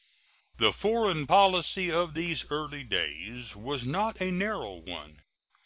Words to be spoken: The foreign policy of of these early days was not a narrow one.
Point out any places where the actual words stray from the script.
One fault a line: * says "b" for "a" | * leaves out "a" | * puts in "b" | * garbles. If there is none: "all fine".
* leaves out "of"